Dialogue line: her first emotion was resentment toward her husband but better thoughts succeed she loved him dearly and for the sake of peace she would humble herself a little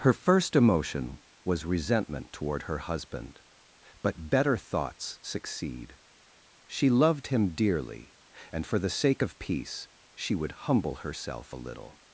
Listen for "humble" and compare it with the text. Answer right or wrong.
right